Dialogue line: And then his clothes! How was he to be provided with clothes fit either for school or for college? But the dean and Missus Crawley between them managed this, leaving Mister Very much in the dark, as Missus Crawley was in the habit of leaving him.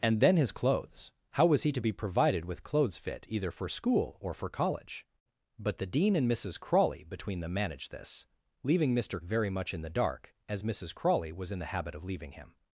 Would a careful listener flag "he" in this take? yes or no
no